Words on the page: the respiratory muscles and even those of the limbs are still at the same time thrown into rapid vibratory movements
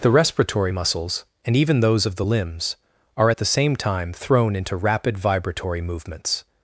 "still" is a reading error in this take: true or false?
true